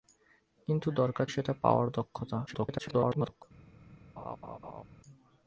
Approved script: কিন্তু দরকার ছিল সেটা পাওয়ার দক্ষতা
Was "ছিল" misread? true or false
true